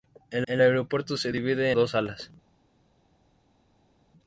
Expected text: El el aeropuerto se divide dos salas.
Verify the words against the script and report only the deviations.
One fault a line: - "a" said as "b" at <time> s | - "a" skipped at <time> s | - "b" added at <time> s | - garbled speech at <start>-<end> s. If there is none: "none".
none